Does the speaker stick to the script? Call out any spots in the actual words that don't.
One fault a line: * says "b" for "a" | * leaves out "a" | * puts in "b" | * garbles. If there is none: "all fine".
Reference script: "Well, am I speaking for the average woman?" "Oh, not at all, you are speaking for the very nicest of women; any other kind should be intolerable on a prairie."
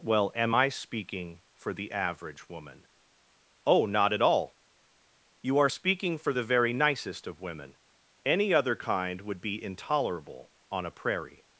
* says "would" for "should"